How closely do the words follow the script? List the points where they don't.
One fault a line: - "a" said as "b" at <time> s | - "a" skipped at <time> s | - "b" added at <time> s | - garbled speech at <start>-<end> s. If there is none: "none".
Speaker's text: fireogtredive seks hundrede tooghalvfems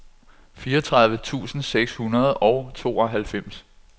- "tusind" added at 1.2 s
- "og" added at 2.4 s